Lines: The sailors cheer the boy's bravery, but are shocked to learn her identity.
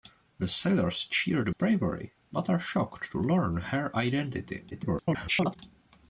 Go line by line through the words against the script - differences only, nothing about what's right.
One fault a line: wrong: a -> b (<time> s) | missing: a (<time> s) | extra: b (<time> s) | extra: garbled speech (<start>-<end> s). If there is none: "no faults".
missing: boy's (1.5 s)
extra: garbled speech (4.7-5.6 s)